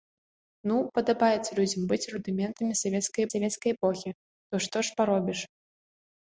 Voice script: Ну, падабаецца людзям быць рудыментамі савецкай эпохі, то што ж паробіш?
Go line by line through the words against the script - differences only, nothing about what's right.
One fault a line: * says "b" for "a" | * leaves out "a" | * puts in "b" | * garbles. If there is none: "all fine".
* puts in "савецкай"